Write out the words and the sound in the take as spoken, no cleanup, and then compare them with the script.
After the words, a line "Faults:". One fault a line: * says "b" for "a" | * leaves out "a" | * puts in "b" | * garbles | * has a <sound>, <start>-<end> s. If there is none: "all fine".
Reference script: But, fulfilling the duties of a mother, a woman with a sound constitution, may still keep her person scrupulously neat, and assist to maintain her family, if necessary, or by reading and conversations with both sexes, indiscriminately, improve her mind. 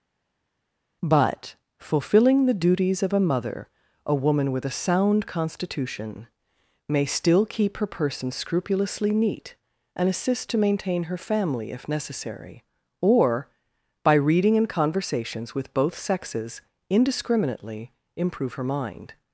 But, fulfilling the duties of a mother, a woman with a sound constitution, may still keep her person scrupulously neat, and assist to maintain her family, if necessary, or by reading and conversations with both sexes, indiscriminately, improve her mind.
Faults:
all fine